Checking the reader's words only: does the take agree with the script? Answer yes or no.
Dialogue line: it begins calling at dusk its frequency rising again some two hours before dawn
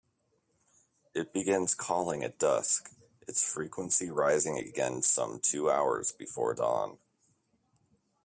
yes